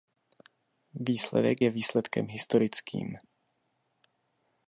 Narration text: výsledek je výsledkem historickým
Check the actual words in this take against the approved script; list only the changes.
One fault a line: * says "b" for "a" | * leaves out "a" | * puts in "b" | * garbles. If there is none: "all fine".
all fine